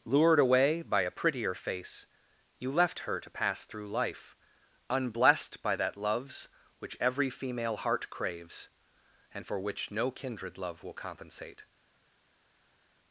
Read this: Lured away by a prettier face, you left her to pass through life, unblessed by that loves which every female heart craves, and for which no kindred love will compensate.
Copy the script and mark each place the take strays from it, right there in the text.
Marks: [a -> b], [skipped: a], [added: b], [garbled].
Lured away by a prettier face, you left her to pass through life, unblessed by that loves which every female heart craves, and for which no kindred love will compensate.